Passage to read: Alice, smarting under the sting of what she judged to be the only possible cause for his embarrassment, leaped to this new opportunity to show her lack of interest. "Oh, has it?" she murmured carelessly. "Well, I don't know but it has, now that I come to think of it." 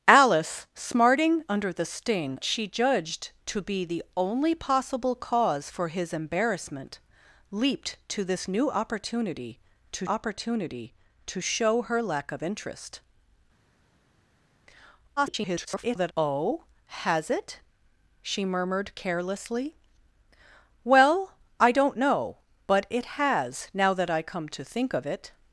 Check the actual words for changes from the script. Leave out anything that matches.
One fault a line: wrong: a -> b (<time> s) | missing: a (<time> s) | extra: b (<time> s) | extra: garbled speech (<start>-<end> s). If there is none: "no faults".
missing: of what (2.4 s)
extra: opportunity to (10.0 s)
extra: garbled speech (15.2-16.1 s)